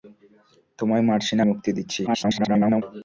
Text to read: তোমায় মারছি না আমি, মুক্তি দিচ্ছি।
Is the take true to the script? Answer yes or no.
no